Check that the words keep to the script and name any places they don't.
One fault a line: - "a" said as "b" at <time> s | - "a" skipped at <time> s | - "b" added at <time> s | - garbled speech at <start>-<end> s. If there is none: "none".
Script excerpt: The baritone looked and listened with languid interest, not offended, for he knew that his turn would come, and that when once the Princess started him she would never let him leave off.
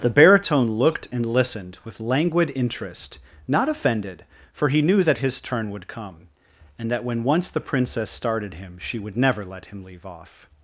none